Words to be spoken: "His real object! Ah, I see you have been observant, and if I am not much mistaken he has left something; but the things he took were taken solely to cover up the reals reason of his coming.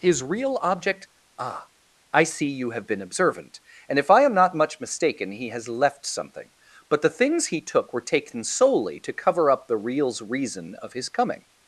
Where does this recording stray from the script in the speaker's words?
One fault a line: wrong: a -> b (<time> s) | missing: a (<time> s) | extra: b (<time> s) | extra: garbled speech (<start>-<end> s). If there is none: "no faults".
no faults